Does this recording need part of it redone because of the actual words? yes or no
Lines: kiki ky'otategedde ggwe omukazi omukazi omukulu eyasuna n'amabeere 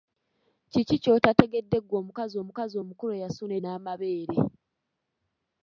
no